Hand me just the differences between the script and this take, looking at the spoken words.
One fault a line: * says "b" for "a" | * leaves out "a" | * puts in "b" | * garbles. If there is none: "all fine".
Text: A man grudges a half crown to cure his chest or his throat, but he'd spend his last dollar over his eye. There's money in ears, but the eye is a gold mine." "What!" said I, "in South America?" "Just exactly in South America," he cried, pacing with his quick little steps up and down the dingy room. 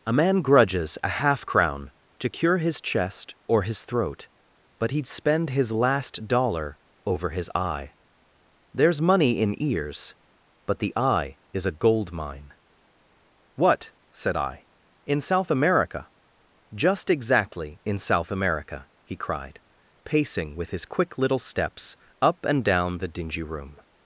all fine